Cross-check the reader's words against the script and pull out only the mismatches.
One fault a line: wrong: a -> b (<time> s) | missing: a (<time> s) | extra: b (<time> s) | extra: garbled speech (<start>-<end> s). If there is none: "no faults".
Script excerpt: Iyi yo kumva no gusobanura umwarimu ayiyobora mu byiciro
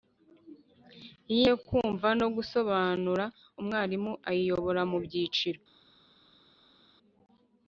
no faults